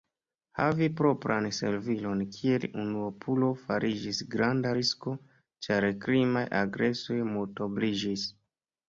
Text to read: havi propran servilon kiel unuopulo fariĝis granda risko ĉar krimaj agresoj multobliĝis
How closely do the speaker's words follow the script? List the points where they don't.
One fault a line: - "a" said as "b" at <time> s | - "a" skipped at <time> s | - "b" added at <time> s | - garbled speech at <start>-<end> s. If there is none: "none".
none